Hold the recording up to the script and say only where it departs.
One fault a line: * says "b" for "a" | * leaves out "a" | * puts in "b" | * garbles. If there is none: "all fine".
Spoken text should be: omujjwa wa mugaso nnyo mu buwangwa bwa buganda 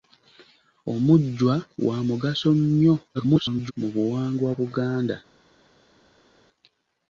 * garbles
* leaves out "bwa"